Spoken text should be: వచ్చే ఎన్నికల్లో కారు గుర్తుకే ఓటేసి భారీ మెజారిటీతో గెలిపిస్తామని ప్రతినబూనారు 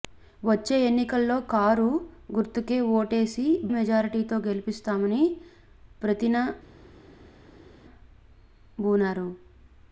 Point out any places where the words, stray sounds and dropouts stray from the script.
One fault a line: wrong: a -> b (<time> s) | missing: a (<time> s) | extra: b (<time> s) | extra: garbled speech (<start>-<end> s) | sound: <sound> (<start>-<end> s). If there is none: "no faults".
missing: భారీ (3.4 s)